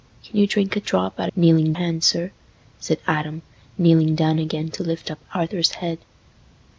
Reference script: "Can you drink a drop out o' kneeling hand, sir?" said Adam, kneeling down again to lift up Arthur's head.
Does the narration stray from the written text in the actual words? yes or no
no